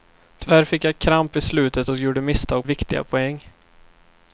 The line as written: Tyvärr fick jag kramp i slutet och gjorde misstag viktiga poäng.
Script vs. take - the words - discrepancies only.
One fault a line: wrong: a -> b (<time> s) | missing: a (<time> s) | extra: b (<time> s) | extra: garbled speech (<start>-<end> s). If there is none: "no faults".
no faults